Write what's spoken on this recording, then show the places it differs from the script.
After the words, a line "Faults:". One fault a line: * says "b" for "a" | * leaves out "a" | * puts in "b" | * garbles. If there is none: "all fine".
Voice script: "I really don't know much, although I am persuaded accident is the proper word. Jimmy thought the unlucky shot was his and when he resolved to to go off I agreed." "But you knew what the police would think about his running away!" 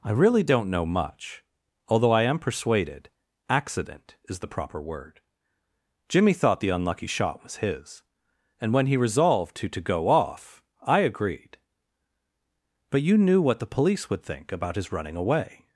"I really don't know much, although I am persuaded accident is the proper word. Jimmy thought the unlucky shot was his and when he resolved to to go off I agreed." "But you knew what the police would think about his running away!"
Faults:
all fine